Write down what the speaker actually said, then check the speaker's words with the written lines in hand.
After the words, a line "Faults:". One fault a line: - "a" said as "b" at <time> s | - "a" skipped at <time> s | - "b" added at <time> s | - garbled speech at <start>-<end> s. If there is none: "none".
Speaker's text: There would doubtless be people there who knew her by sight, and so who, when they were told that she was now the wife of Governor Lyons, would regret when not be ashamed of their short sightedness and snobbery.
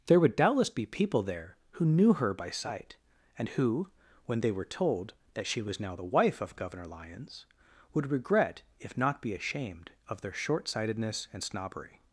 There would doubtless be people there who knew her by sight, and who, when they were told that she was now the wife of Governor Lyons, would regret if not be ashamed of their short sightedness and snobbery.
Faults:
- "so" skipped at 3.5 s
- "when" said as "if" at 8.8 s